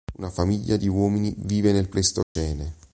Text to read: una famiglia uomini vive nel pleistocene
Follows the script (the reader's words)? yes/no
no